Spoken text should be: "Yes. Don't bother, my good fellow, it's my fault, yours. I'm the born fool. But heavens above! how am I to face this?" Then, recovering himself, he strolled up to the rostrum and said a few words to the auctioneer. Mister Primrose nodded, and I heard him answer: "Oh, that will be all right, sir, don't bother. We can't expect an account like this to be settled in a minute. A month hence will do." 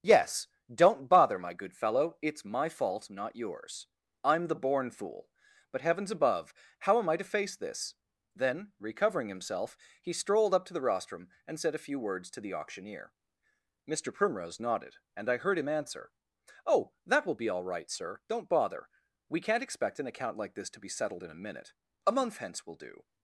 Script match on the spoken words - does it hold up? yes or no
no